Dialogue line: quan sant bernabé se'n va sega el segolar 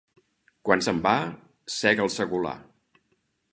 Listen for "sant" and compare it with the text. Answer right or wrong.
wrong